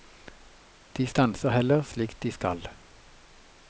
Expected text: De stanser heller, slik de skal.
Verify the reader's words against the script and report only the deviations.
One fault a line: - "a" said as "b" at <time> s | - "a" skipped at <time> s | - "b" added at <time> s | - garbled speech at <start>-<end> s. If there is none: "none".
none